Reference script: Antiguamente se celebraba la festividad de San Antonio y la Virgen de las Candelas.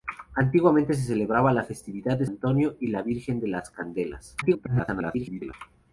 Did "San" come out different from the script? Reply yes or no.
yes